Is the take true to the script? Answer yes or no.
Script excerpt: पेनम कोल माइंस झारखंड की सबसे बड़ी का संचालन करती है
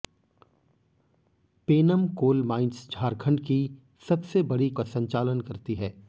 yes